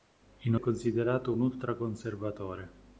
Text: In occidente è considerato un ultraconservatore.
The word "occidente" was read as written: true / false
false